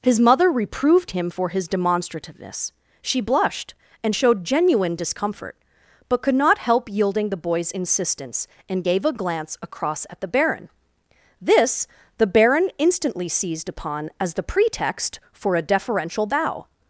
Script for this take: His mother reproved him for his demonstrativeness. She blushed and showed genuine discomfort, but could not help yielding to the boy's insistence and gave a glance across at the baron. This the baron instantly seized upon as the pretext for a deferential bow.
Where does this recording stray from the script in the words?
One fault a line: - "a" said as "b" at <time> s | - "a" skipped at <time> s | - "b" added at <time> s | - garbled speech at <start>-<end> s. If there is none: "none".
- "to" skipped at 7.3 s